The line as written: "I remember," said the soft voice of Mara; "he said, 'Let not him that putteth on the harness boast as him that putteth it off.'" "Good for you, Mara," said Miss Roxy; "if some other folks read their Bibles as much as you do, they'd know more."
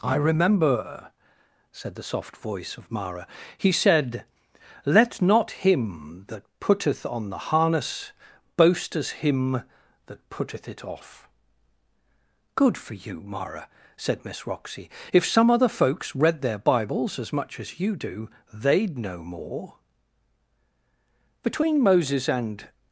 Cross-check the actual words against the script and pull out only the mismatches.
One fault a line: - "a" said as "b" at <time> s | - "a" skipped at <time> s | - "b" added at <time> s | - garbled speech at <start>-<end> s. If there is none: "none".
- "Between Moses and" added at 21.4 s